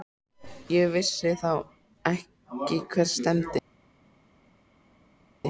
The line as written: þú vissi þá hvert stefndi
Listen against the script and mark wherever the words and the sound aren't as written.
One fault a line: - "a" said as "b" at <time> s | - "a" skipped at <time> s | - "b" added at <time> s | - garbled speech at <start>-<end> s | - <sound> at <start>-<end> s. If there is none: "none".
- "þú" said as "ég" at 0.8 s
- "ekki" added at 2.1 s